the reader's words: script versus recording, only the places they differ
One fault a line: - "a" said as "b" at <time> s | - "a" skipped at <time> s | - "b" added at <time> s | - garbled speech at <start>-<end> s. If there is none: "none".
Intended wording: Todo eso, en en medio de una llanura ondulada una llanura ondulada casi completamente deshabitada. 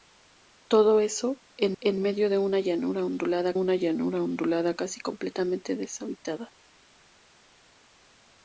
none